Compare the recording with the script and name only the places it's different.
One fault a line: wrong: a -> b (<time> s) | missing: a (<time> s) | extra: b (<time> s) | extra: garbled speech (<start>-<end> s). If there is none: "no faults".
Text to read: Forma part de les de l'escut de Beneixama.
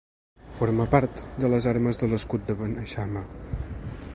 extra: armes (1.7 s)